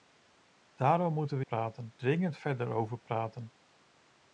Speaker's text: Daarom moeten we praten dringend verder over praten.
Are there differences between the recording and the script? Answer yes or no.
no